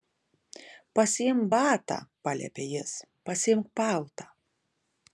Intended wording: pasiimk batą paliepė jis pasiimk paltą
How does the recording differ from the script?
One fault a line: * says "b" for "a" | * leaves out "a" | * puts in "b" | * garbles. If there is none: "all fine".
all fine